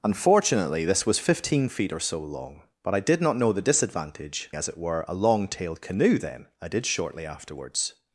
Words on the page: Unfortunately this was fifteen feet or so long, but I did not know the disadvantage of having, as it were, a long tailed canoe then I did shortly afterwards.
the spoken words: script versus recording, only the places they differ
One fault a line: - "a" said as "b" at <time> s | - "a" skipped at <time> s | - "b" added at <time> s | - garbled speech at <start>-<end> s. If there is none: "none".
- "of having" skipped at 4.5 s